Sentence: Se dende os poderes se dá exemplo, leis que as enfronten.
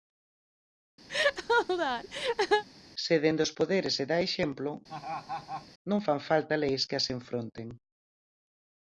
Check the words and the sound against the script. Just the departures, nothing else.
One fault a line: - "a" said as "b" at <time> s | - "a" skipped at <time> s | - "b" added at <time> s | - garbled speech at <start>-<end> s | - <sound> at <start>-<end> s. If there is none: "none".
- laugh at 1.1-2.6 s
- laugh at 4.9-5.7 s
- "non fan falta" added at 5.9 s